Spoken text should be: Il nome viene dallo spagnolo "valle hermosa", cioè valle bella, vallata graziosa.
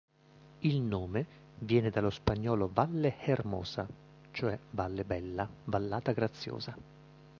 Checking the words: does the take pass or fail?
pass